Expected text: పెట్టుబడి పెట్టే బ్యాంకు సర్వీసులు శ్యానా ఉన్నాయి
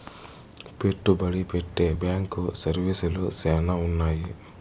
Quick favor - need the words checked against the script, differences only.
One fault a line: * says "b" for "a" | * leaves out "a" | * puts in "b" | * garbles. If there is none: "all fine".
all fine